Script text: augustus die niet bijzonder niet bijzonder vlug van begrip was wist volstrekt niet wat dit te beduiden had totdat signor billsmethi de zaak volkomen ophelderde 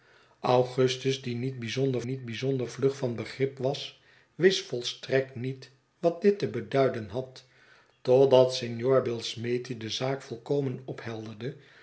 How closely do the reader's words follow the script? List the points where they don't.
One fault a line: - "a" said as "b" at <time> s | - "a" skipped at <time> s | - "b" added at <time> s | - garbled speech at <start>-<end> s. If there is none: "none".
none